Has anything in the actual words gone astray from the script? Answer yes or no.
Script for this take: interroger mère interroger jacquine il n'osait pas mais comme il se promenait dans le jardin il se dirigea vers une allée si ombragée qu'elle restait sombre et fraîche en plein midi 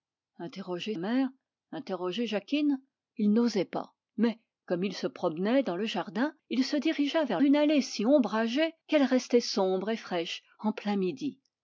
no